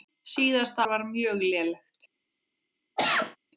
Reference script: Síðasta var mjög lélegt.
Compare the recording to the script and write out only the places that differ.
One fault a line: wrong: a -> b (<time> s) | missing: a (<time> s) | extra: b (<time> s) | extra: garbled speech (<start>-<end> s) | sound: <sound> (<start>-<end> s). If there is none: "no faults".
sound: cough (3.0-3.4 s)